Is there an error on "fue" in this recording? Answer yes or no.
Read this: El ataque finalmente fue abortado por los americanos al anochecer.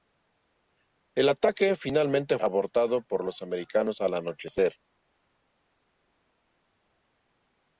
yes